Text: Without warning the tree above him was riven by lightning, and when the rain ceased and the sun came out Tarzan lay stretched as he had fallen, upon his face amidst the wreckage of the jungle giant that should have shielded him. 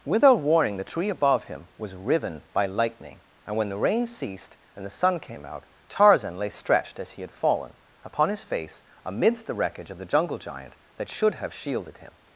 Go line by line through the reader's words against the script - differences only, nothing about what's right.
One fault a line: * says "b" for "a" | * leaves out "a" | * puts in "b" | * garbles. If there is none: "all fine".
all fine